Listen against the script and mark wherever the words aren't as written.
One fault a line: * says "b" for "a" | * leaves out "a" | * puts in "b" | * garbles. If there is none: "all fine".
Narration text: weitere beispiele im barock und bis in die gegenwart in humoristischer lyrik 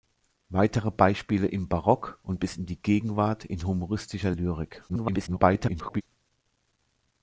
* garbles